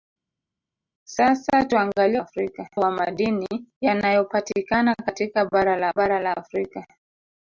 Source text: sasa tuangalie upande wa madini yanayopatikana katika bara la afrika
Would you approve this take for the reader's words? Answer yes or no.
no